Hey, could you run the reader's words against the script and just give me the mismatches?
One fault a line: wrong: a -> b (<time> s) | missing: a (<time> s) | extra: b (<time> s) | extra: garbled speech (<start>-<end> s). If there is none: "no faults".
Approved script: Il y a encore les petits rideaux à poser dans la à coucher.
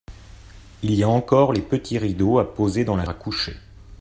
no faults